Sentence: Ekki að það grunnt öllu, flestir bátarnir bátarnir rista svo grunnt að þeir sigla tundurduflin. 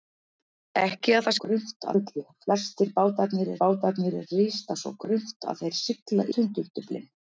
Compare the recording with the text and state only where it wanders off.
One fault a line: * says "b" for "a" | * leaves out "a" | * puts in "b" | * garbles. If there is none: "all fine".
all fine